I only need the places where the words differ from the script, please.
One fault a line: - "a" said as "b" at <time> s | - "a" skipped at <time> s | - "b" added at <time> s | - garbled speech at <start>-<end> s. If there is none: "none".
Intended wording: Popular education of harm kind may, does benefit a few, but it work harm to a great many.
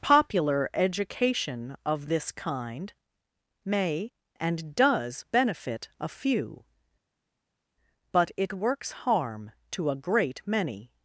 - "harm" said as "this" at 2.1 s
- "and" added at 4.4 s
- "work" said as "works" at 8.5 s